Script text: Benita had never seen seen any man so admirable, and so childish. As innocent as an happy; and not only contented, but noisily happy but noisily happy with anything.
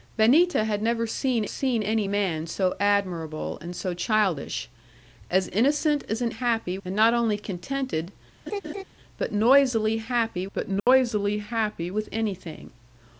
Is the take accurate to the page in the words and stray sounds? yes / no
no